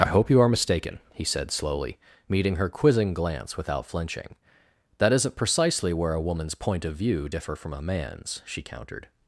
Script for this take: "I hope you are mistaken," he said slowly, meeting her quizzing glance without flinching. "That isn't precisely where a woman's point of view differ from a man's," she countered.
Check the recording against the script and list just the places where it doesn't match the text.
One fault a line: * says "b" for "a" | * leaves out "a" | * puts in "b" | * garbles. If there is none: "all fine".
all fine